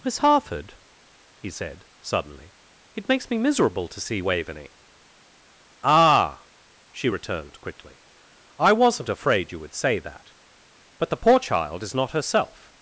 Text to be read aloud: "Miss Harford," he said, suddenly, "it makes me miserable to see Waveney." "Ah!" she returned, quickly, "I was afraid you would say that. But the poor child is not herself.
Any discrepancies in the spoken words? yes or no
yes